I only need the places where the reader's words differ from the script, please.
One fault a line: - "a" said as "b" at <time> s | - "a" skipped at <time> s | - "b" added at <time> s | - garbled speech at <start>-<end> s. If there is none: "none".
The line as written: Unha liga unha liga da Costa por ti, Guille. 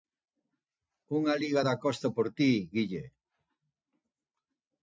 - "unha liga" skipped at 1.6 s